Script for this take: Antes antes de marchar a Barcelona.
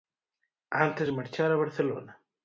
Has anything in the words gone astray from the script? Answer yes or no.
yes